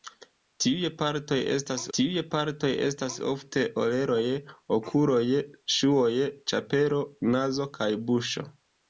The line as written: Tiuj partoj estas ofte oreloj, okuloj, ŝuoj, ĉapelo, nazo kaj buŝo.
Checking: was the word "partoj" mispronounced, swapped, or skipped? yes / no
no